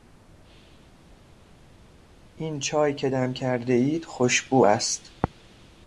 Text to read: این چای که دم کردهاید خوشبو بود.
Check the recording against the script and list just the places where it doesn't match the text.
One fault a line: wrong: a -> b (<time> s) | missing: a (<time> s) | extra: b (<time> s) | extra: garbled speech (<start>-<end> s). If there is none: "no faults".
wrong: بود -> است (4.6 s)